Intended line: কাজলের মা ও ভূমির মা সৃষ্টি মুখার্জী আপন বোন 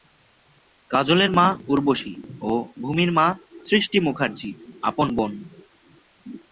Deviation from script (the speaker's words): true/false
true